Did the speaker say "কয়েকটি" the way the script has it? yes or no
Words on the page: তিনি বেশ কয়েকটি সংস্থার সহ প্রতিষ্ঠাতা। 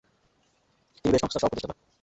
no